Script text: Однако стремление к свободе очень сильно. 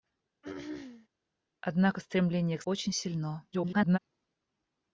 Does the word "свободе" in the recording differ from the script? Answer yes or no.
yes